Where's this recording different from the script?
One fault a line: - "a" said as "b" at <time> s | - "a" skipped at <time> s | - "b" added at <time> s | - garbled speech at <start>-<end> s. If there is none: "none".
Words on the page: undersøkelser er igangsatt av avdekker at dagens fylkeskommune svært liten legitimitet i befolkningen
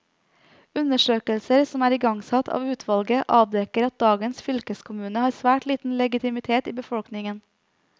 - "som" added at 1.7 s
- "utvalget" added at 2.8 s
- "har" added at 5.3 s